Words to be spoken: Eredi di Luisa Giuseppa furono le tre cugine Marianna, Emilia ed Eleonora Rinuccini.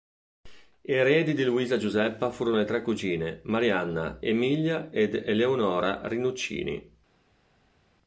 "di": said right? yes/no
yes